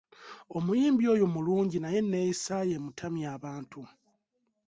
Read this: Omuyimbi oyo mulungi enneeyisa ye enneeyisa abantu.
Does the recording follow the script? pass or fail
fail